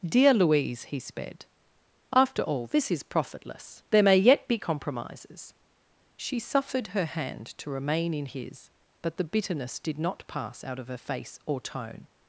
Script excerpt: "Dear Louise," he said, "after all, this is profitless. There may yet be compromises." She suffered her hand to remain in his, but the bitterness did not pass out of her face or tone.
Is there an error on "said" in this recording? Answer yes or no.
yes